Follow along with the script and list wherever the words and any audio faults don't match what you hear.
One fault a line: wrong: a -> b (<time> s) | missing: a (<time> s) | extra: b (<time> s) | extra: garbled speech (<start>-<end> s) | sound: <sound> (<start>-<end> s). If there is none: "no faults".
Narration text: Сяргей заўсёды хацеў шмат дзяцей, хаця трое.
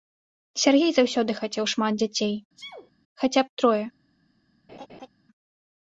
sound: sneeze (2.6-2.9 s)
extra: б (3.5 s)
sound: laugh (4.7-5.1 s)